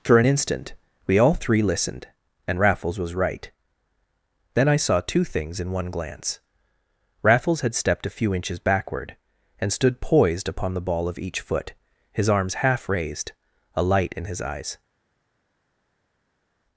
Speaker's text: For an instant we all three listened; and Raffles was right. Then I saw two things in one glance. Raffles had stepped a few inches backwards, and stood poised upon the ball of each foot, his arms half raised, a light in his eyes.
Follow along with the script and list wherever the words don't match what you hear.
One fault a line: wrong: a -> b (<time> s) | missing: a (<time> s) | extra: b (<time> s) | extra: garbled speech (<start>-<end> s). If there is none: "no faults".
wrong: backwards -> backward (8.6 s)